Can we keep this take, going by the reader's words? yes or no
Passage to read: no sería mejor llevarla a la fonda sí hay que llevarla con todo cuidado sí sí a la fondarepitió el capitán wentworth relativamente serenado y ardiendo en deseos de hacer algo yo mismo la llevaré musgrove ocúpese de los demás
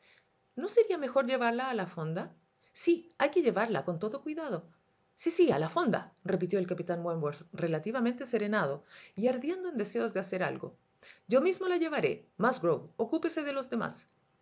yes